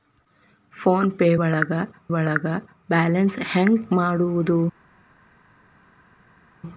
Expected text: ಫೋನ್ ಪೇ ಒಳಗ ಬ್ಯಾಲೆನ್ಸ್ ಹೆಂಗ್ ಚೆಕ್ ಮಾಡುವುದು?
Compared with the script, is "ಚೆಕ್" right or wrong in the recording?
wrong